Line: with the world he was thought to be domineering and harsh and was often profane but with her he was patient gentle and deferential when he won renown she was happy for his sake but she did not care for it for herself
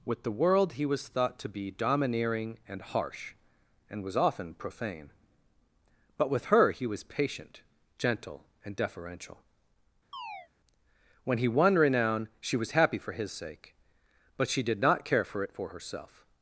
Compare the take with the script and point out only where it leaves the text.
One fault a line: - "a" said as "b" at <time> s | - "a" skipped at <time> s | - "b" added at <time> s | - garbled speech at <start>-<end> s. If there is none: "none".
none